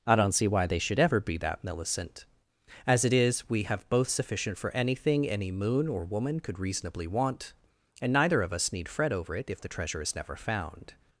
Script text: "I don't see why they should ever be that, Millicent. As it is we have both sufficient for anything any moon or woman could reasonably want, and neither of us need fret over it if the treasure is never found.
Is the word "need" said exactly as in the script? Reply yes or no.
yes